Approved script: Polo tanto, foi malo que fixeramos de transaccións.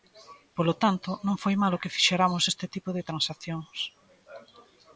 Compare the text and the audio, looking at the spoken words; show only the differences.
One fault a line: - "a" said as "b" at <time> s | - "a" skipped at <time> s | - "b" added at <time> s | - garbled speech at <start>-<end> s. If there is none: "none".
- "non" added at 1.3 s
- "este tipo" added at 2.5 s